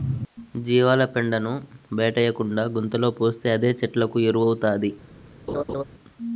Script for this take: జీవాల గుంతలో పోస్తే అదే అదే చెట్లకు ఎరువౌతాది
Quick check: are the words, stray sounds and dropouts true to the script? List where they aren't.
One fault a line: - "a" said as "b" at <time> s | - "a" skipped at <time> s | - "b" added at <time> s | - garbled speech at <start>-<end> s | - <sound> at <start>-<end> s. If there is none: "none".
- "పెండను బయటేయకుండా" added at 1.1 s
- "అదే" skipped at 3.7 s
- laugh at 5.5-5.8 s